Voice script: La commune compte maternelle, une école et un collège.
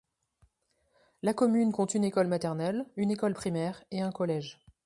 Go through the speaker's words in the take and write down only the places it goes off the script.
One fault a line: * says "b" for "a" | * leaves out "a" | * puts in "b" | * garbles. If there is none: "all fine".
* puts in "une école"
* puts in "primaire"